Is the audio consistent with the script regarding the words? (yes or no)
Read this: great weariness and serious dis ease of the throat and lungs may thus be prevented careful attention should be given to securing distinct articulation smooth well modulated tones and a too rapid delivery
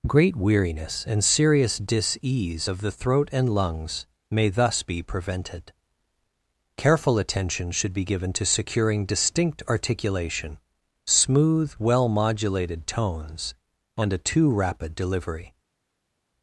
yes